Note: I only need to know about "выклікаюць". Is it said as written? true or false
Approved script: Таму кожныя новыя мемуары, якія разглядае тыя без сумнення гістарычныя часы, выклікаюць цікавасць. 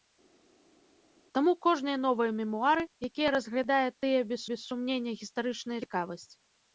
false